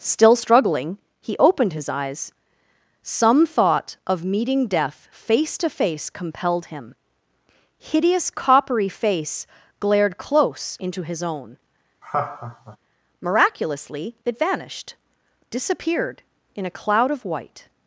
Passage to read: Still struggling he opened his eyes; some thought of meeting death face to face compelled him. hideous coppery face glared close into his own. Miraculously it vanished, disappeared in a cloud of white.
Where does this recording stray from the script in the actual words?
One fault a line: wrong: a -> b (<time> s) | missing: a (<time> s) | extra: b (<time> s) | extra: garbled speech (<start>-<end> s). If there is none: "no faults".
no faults